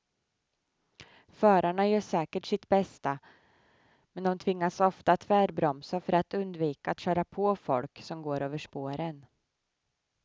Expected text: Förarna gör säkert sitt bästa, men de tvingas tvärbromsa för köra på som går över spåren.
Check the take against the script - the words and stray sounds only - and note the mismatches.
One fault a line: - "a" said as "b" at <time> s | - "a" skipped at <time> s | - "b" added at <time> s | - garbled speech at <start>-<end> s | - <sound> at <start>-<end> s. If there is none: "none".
- "ofta" added at 4.8 s
- "att undvika att" added at 6.1 s
- "folk" added at 7.6 s